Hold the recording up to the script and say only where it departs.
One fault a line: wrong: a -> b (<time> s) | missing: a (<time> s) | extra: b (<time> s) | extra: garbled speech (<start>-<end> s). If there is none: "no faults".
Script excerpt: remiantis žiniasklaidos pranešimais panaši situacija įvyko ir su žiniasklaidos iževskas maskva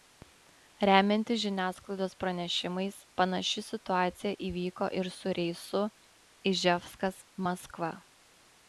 wrong: žiniasklaidos -> reisu (5.4 s)